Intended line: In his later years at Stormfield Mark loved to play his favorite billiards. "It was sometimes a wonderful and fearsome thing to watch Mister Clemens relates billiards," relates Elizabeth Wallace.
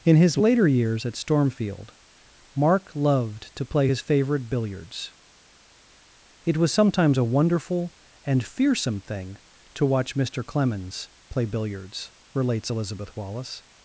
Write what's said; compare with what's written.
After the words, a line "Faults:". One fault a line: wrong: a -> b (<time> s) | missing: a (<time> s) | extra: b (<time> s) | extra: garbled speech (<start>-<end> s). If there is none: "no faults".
In his later years at Stormfield Mark loved to play his favorite billiards. "It was sometimes a wonderful and fearsome thing to watch Mister Clemens play billiards," relates Elizabeth Wallace.
Faults:
wrong: relates -> play (11.3 s)